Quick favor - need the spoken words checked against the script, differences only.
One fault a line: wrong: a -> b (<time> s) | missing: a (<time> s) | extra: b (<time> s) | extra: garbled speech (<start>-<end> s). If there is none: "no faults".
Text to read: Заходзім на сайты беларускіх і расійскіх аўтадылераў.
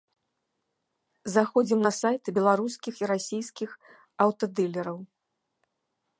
no faults